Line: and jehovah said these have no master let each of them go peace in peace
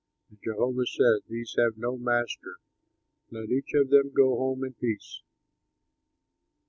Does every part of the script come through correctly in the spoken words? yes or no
no